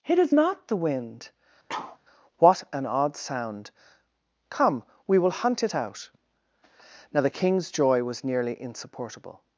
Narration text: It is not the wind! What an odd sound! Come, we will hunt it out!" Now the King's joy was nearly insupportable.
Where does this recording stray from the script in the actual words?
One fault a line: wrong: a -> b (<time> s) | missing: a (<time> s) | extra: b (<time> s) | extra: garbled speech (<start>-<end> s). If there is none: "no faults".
no faults